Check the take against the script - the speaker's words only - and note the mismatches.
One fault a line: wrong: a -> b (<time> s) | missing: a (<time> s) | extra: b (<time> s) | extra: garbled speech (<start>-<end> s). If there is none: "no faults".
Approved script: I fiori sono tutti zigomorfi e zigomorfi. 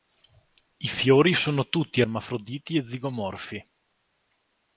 wrong: zigomorfi -> ermafroditi (2.0 s)